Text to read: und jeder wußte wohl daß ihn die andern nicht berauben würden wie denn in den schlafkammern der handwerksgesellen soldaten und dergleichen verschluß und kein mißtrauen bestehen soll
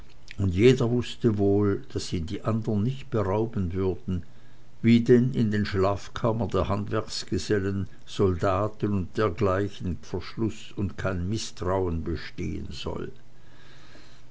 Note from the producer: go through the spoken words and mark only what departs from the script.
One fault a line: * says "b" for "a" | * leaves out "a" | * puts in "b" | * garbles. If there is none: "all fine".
all fine